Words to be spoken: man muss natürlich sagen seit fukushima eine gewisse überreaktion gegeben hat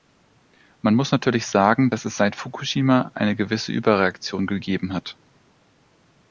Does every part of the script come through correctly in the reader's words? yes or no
no